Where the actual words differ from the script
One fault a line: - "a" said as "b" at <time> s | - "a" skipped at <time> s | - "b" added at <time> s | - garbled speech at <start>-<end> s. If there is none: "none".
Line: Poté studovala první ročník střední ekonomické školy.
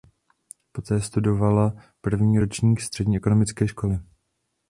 none